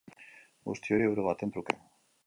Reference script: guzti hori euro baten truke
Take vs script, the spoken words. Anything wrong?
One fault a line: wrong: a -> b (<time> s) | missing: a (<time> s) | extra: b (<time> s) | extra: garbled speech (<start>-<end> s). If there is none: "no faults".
no faults